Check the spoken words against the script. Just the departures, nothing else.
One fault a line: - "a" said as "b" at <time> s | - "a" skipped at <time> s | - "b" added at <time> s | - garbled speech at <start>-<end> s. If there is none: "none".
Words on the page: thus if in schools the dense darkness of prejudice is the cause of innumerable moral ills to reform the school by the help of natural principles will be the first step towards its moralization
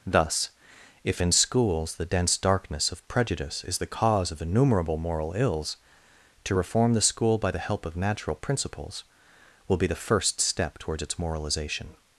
none